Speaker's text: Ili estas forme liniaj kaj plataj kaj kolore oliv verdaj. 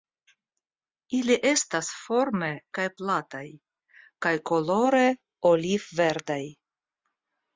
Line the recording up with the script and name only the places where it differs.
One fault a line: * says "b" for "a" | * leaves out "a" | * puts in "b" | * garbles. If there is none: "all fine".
* leaves out "liniaj"